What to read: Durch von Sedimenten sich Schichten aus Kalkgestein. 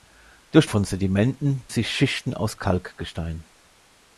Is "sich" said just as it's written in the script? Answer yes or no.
yes